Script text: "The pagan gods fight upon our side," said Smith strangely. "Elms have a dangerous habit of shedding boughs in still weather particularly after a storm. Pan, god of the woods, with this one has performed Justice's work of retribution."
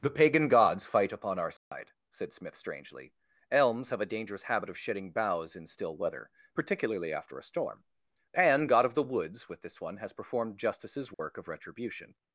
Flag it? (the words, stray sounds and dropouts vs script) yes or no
yes